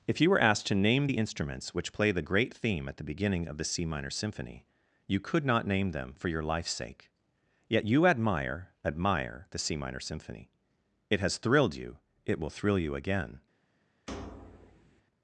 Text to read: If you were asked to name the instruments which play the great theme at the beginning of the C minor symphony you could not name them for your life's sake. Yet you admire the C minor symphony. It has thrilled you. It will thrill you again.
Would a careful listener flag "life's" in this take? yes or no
no